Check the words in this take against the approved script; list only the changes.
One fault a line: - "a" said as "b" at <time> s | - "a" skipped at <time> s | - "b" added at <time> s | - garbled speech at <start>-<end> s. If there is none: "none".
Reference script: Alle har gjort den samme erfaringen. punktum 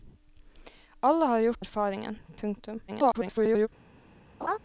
- "den samme" skipped at 1.6 s
- garbled speech at 2.9-3.7 s